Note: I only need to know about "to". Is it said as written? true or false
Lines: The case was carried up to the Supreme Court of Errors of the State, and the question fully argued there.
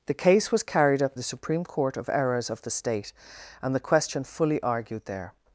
false